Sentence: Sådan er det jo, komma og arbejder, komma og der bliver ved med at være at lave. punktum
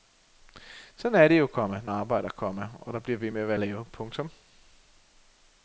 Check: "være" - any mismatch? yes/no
no